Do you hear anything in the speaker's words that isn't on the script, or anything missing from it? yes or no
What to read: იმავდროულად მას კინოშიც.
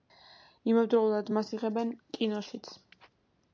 yes